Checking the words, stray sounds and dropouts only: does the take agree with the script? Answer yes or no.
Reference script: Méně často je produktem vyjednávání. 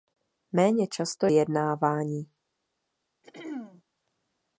no